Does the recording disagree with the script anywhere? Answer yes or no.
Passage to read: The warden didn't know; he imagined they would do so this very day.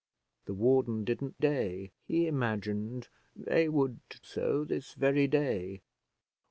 yes